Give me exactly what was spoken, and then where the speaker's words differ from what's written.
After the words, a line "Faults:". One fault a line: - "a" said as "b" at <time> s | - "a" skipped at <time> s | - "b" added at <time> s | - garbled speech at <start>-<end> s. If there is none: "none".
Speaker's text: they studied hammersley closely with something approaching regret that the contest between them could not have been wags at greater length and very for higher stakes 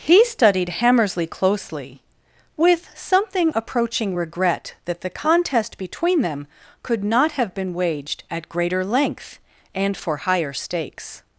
he studied hammersley closely with something approaching regret that the contest between them could not have been waged at greater length and for higher stakes
Faults:
- "they" said as "he" at 0.0 s
- "wags" said as "waged" at 7.7 s
- "very" skipped at 9.9 s